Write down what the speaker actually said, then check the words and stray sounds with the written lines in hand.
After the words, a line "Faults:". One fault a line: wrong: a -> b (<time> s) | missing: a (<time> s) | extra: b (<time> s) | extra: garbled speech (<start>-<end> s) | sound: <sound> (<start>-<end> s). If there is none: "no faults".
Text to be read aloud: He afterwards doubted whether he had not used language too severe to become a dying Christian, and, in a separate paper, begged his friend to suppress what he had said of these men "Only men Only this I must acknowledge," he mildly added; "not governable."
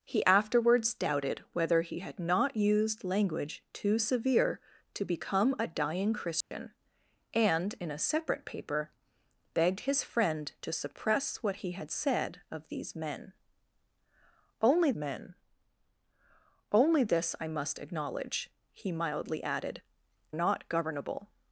He afterwards doubted whether he had not used language too severe to become a dying Christian, and, in a separate paper, begged his friend to suppress what he had said of these men "Only men Only this I must acknowledge," he mildly added; "not governable."
Faults:
sound: dropout (6.4-6.5 s)